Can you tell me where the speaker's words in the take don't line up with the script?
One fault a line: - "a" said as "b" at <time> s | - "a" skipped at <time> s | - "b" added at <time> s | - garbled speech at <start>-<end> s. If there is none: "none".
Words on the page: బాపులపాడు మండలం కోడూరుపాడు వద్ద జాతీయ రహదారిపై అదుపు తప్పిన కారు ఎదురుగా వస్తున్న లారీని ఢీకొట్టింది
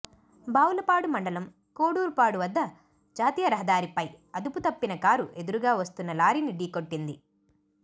none